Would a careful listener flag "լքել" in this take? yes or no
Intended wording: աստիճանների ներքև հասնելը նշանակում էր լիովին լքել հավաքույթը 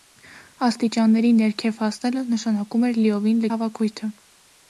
yes